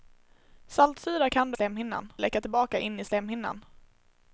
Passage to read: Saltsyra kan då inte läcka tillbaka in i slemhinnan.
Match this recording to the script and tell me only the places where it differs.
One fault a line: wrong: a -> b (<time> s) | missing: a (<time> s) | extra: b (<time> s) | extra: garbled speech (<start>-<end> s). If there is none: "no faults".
wrong: inte -> slemhinnan (1.5 s)